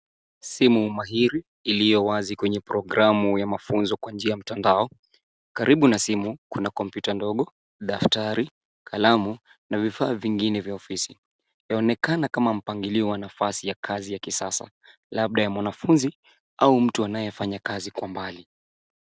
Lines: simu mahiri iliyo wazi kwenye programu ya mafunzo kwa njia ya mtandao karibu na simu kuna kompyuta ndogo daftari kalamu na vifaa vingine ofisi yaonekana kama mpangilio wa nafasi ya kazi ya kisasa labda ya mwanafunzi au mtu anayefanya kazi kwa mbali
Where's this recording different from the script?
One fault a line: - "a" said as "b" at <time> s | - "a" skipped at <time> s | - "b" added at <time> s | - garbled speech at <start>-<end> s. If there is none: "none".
- "vya" added at 10.6 s